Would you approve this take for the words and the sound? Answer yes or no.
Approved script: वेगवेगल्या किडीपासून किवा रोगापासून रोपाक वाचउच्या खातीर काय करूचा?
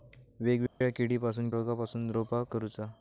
no